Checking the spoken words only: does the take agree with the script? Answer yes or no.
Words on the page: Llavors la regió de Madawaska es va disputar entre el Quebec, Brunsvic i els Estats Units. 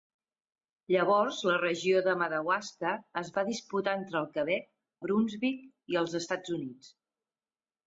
yes